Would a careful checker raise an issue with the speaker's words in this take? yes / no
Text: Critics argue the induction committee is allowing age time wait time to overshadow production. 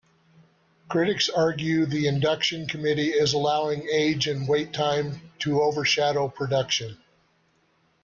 yes